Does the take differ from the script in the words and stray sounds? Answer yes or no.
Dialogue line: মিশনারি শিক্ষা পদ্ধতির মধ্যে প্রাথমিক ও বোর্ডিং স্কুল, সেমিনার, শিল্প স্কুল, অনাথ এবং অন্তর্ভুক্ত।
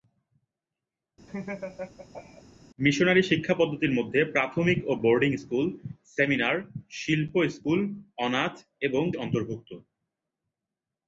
yes